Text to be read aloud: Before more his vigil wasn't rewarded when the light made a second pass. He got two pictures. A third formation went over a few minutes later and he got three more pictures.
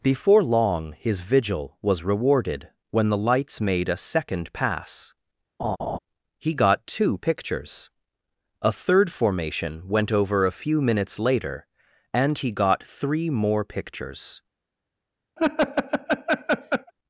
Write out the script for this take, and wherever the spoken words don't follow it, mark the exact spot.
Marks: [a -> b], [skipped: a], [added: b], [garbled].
Before [more -> long] his vigil [wasn't -> was] rewarded when the [light -> lights] made a second pass. He got two pictures. A third formation went over a few minutes later and he got three more pictures.